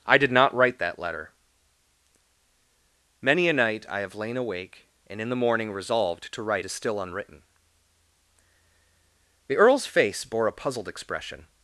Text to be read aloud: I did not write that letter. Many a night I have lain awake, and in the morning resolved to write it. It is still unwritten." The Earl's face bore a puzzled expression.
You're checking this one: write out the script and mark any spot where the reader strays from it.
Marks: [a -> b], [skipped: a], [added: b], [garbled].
I did not write that letter. Many a night I have lain awake, and in the morning resolved to write [skipped: it. It] is still unwritten." The Earl's face bore a puzzled expression.